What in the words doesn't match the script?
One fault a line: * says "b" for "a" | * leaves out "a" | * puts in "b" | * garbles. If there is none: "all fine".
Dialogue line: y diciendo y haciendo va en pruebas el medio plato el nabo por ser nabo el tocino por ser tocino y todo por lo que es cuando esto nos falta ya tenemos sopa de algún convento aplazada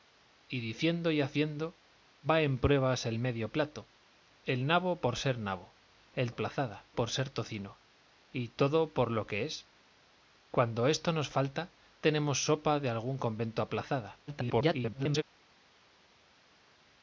* says "aplazada" for "tocino"
* leaves out "ya"
* garbles